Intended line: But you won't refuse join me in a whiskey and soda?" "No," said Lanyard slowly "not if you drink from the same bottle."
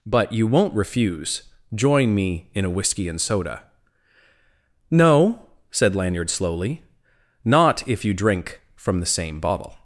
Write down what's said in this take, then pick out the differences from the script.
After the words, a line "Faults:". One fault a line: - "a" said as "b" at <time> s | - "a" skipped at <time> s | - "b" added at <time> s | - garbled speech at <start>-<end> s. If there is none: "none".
But you won't refuse join me in a whiskey and soda?" "No," said Lanyard slowly "not if you drink from the same bottle."
Faults:
none